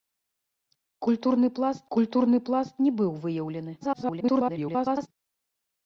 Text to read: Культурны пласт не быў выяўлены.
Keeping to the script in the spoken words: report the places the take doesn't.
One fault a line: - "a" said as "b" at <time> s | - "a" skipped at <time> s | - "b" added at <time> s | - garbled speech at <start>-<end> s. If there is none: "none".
- "культурны пласт" added at 2.0 s
- garbled speech at 3.8-5.1 s